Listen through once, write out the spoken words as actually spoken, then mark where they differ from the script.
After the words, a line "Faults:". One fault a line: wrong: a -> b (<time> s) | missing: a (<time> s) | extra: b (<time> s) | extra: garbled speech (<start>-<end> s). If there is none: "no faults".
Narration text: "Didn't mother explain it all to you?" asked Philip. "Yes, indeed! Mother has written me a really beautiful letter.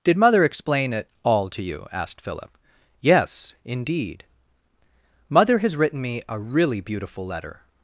"Did mother explain it all to you?" asked Philip. "Yes, indeed! Mother has written me a really beautiful letter.
Faults:
wrong: Didn't -> Did (0.0 s)